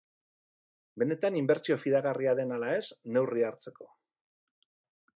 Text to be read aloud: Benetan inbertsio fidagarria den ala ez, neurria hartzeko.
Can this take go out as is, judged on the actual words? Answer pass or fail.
pass